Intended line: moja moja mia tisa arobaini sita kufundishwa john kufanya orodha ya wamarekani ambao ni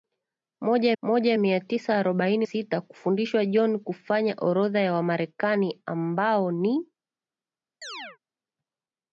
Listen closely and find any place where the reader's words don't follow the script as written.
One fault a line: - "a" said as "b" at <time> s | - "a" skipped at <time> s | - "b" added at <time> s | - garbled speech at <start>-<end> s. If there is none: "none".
none